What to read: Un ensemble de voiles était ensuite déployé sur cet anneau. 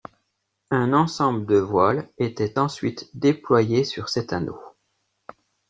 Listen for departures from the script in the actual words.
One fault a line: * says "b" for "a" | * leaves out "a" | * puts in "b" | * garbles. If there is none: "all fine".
all fine